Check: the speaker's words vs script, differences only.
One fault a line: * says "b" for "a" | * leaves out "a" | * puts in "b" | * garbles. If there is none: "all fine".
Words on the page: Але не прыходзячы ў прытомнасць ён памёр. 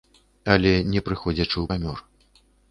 * leaves out "прытомнасць ён"